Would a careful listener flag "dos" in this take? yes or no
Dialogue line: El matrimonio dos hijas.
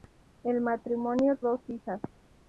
no